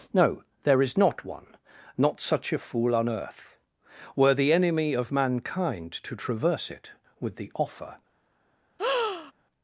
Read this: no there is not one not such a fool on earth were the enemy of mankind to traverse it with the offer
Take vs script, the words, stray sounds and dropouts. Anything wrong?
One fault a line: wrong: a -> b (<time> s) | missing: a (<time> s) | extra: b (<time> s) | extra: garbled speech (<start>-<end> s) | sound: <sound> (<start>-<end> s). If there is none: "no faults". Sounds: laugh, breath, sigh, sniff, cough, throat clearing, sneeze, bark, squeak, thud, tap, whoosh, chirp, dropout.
sound: breath (8.8-9.3 s)